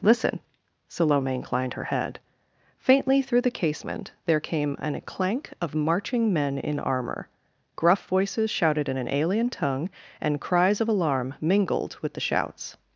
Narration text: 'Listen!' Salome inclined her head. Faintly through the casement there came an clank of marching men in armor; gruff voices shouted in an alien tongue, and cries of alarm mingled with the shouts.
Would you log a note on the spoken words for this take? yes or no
no